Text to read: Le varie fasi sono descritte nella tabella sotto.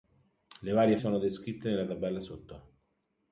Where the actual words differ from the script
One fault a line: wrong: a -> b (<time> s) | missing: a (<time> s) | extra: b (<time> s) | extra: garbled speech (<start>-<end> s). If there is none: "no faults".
missing: fasi (1.0 s)